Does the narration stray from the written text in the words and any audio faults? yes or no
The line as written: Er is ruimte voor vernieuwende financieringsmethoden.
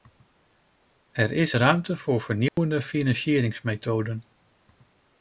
yes